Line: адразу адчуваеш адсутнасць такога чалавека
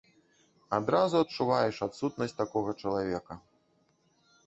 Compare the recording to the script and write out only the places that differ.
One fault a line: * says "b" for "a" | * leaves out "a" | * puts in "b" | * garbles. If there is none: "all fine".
all fine